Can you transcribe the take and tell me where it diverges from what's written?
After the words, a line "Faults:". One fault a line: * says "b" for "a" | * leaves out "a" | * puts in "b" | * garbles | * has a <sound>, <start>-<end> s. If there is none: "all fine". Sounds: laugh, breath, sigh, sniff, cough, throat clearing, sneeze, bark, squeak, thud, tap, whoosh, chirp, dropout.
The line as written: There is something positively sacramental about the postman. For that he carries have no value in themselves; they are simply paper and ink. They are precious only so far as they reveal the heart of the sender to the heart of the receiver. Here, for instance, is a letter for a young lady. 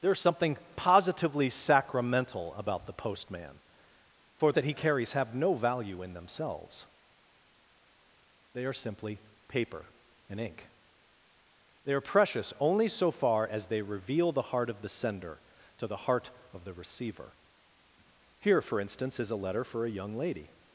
There is something positively sacramental about the postman. For that he carries have no value in themselves; they are simply paper and ink. They are precious only so far as they reveal the heart of the sender to the heart of the receiver. Here, for instance, is a letter for a young lady.
Faults:
all fine